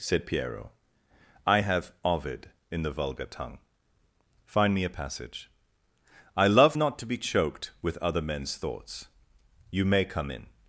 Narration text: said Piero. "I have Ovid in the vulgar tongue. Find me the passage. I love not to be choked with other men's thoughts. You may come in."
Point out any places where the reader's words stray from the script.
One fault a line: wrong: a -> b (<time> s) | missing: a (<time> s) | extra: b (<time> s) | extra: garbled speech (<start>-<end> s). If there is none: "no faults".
wrong: the -> a (4.8 s)